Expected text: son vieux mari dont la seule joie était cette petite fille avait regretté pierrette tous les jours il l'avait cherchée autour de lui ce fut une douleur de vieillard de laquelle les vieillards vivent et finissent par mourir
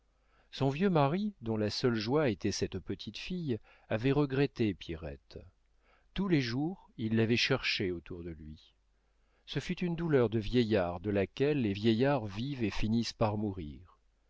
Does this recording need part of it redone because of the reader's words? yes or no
no